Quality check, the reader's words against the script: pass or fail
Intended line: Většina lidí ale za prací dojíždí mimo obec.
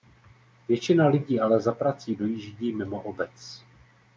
pass